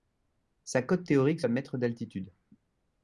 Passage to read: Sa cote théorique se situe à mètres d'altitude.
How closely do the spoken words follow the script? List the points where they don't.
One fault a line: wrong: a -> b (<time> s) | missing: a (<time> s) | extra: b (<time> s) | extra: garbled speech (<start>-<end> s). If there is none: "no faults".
missing: se situe (1.4 s)